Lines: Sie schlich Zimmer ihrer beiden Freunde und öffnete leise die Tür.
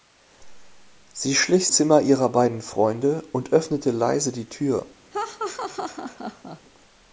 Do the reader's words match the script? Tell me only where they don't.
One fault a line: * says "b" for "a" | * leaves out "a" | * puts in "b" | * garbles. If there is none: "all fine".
all fine